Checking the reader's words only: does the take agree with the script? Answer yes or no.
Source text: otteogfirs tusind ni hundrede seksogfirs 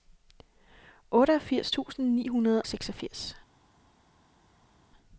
yes